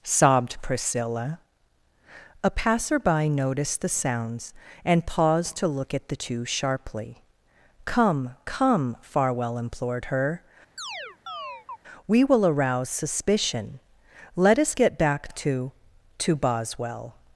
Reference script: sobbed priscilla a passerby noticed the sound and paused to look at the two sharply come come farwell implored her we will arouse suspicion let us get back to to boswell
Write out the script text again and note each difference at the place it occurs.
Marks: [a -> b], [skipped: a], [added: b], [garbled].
sobbed priscilla a passerby noticed the [sound -> sounds] and paused to look at the two sharply come come farwell implored her we will arouse suspicion let us get back to to boswell